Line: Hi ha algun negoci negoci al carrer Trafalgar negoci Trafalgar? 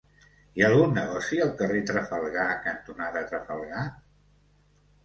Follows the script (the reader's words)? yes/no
no